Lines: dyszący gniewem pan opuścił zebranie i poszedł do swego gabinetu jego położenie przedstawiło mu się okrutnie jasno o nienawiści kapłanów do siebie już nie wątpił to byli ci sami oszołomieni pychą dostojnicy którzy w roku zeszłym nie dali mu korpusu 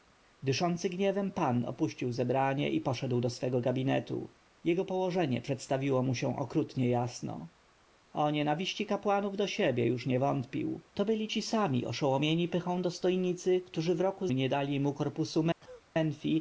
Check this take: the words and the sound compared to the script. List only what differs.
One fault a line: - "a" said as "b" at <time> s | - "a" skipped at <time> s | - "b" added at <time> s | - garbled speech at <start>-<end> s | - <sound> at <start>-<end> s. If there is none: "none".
- "zeszłym" skipped at 14.3 s
- cough at 15.6-15.9 s